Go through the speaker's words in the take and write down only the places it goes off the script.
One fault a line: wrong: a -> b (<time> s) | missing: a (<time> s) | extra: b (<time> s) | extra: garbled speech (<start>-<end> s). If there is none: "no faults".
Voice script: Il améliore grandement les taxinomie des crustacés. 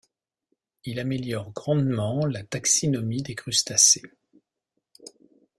wrong: les -> la (2.2 s)